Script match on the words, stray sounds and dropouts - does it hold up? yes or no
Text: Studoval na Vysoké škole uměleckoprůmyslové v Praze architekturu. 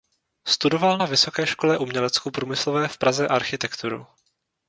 yes